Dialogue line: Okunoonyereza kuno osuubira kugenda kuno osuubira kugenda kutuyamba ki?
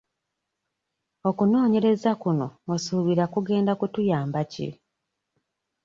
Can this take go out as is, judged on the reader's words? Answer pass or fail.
fail